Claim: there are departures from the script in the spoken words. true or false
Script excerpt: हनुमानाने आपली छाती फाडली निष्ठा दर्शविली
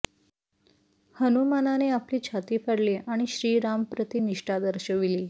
true